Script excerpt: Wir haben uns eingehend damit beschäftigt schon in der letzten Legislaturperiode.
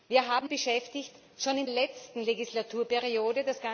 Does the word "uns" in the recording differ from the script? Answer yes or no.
yes